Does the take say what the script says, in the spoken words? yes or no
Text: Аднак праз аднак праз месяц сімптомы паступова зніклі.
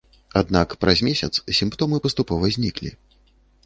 no